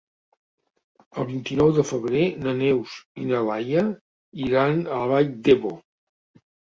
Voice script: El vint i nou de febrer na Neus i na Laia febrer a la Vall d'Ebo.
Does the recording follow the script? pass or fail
fail